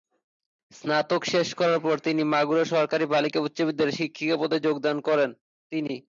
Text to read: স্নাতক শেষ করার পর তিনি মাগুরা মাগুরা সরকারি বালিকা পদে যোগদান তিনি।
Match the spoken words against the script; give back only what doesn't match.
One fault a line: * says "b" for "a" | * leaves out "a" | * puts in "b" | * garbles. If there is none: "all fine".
* leaves out "মাগুরা"
* puts in "উচ্চ বিদ্যালয়ে শিক্ষিকা"
* puts in "করেন"